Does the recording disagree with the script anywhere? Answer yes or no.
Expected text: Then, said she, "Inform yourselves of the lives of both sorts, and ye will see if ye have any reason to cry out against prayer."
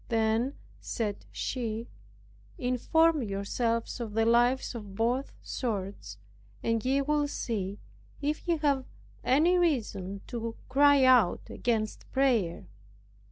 no